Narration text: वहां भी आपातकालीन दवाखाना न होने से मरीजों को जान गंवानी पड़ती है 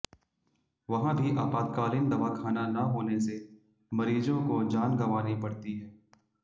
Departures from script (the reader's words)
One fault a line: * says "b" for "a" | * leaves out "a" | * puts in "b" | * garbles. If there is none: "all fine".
all fine